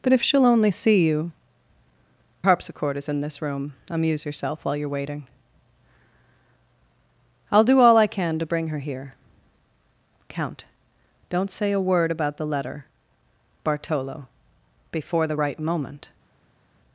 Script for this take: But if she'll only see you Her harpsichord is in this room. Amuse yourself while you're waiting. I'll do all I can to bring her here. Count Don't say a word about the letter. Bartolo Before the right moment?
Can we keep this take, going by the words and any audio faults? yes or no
no